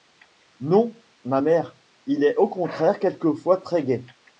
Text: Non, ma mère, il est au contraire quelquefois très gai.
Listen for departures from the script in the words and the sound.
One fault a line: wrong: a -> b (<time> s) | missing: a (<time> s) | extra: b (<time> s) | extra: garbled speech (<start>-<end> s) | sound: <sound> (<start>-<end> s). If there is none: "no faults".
no faults